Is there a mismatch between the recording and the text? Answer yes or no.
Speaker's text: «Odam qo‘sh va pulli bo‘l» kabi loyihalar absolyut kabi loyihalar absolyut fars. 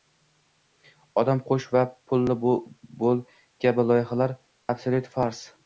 yes